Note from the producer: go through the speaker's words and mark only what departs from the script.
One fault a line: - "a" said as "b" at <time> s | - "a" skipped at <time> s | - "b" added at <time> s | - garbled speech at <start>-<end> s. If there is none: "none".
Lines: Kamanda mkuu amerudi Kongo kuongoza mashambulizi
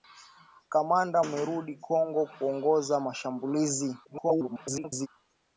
- "mkuu" skipped at 1.2 s
- garbled speech at 4.0-5.1 s